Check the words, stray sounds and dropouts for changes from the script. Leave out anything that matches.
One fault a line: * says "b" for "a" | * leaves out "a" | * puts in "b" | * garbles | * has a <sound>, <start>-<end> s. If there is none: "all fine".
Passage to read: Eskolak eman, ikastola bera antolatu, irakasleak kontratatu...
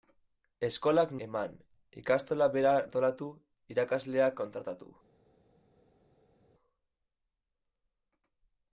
all fine